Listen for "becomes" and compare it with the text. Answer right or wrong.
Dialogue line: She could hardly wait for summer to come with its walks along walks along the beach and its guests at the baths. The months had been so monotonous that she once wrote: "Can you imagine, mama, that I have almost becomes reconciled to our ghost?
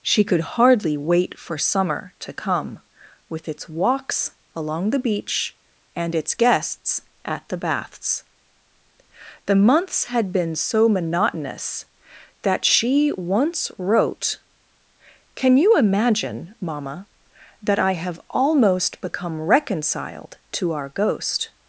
wrong